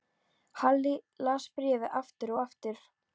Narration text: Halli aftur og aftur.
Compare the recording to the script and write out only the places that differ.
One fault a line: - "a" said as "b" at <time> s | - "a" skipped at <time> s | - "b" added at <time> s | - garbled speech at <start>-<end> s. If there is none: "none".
- "las bréfið" added at 1.3 s